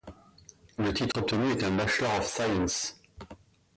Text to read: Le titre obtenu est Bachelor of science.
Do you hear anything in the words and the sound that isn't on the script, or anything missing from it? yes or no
yes